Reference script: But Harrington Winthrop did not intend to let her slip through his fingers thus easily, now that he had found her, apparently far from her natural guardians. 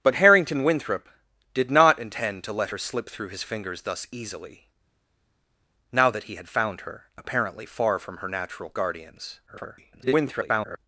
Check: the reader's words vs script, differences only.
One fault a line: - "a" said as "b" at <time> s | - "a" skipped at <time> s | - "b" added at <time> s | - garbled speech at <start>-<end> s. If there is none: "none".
- garbled speech at 9.5-10.8 s